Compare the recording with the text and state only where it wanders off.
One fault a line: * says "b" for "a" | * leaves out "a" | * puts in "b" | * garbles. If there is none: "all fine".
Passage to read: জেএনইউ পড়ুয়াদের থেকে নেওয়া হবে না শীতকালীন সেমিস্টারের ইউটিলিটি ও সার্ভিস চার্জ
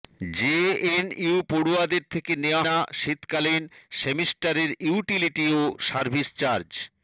* leaves out "হবে"